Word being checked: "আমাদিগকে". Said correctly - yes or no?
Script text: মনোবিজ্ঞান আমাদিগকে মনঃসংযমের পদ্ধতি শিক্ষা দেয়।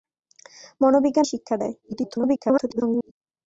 no